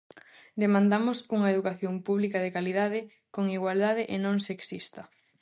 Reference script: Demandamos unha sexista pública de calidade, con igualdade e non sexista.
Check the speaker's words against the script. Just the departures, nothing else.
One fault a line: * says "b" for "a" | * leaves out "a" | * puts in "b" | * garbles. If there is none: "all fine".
* says "educación" for "sexista"